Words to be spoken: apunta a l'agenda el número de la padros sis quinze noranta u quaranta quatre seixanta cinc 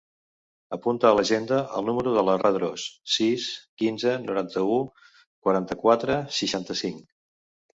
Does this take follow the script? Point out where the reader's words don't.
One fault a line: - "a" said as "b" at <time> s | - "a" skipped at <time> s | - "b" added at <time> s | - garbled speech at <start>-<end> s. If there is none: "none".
none